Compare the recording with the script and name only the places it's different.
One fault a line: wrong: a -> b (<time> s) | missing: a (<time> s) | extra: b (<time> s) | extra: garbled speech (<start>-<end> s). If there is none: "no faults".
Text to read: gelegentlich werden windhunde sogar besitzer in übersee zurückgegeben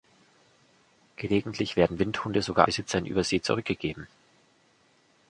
no faults